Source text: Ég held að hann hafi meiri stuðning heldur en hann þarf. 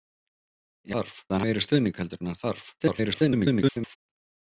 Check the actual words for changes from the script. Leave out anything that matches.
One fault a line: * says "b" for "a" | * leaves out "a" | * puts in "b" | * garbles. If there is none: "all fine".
* says "þarf" for "held"
* leaves out "hafi"
* garbles